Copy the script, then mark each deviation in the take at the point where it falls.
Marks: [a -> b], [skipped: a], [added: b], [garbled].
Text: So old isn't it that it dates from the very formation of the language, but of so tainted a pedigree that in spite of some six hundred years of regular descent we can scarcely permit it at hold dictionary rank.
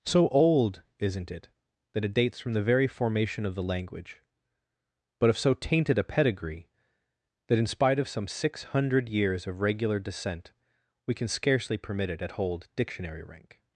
So old isn't it that it dates from the very formation of the language, but of so tainted a pedigree that in spite of some six hundred years of regular descent we can scarcely permit it at hold dictionary rank.